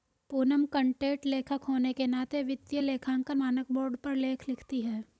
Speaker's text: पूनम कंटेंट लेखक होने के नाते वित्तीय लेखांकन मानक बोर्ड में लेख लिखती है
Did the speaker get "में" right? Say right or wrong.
wrong